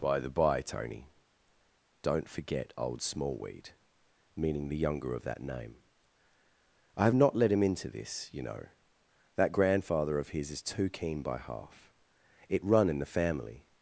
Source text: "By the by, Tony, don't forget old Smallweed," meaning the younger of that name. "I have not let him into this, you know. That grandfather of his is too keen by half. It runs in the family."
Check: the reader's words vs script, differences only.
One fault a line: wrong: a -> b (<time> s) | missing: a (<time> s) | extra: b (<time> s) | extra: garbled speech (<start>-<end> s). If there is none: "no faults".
wrong: runs -> run (12.6 s)